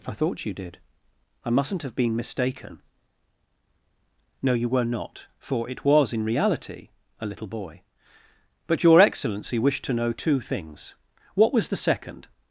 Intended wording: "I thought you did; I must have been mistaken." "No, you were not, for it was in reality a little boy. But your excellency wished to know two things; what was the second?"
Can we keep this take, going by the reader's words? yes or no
no